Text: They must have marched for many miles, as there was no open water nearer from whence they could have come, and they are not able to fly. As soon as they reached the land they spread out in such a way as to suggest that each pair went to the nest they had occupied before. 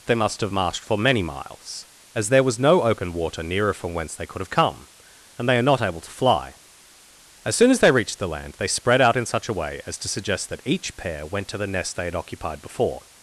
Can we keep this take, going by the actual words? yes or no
yes